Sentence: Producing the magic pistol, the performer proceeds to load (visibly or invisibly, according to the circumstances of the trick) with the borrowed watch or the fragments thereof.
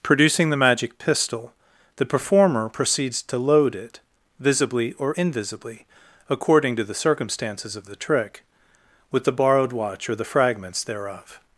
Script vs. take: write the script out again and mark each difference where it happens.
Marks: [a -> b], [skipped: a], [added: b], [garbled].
Producing the magic pistol, the performer proceeds to load [added: it] (visibly or invisibly, according to the circumstances of the trick) with the borrowed watch or the fragments thereof.